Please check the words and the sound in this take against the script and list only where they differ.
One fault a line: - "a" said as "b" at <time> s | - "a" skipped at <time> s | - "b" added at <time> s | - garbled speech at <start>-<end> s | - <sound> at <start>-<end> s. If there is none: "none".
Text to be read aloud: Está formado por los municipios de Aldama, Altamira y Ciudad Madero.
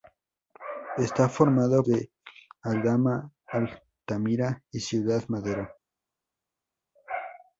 - "por los municipios" skipped at 1.9 s